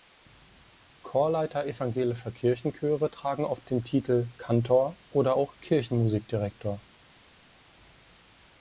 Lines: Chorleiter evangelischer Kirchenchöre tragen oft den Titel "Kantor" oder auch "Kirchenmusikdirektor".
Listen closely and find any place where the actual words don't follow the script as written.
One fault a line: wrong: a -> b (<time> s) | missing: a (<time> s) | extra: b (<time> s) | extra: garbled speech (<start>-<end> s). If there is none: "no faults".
no faults